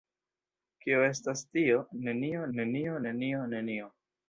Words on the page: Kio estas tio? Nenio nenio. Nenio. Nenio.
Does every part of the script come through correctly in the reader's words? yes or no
yes